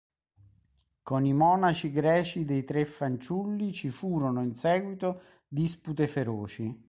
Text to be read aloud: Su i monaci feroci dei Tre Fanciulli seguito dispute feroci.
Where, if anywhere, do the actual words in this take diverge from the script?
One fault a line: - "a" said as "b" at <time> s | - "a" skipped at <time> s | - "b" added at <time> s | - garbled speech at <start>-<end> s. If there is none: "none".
- "Su" said as "Con" at 1.0 s
- "feroci" said as "greci" at 1.9 s
- "ci furono in" added at 3.7 s